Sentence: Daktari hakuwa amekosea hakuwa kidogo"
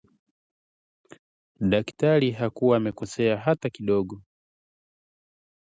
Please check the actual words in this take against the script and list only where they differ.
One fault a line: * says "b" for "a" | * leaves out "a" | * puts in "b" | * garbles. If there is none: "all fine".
* says "hata" for "hakuwa"